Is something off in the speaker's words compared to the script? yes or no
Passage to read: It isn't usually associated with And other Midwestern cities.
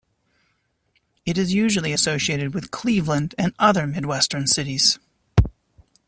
yes